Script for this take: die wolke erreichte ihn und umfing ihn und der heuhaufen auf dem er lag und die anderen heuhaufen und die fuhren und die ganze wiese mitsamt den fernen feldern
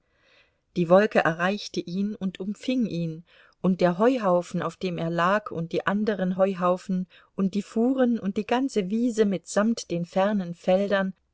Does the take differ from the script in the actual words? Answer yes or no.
no